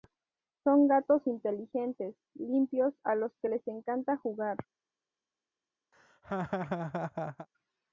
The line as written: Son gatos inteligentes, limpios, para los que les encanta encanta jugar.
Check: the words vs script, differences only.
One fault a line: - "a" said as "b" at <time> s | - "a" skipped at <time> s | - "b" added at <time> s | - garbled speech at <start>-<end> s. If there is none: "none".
- "para" said as "a" at 3.0 s
- "encanta" skipped at 4.1 s